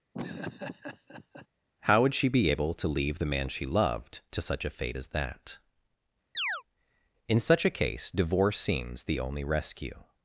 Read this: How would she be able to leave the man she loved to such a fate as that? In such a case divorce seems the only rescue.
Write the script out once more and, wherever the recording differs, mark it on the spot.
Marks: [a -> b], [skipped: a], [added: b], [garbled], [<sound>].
[laugh] How would she be able to leave the man she loved to such a fate as that? [chirp] In such a case divorce seems the only rescue.